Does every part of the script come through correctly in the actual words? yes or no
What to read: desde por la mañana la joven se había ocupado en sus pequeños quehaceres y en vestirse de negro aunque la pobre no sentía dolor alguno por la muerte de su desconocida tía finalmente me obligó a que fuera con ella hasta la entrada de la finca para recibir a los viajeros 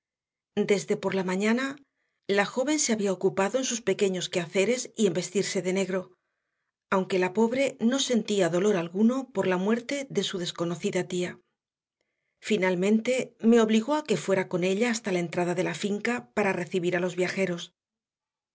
yes